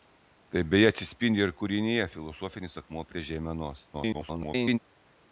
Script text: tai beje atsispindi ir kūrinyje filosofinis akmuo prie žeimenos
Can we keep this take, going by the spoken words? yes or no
no